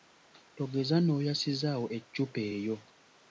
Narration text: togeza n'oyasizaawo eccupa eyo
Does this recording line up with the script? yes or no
yes